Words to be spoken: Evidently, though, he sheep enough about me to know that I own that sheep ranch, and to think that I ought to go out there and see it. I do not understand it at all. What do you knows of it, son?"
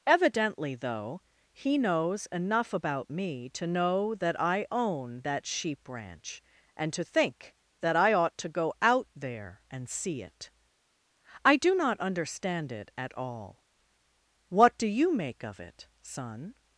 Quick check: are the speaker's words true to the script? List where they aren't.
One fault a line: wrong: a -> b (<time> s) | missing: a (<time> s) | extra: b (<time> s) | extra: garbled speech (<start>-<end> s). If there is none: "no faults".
wrong: sheep -> knows (1.8 s)
wrong: knows -> make (15.1 s)